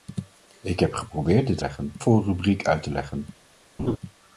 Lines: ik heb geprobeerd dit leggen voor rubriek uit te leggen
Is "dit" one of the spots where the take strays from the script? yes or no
no